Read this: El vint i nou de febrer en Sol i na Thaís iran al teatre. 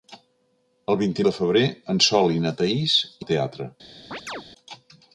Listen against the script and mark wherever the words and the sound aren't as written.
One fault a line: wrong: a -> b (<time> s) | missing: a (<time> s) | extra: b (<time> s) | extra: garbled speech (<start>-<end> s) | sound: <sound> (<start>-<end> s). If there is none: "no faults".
missing: nou (1.2 s)
missing: iran (3.0 s)
sound: chirp (4.1-4.4 s)